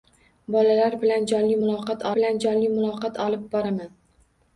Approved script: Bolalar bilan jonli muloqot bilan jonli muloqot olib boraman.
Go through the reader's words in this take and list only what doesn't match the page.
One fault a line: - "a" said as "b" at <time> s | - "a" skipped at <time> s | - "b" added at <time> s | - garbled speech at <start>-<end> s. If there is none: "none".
none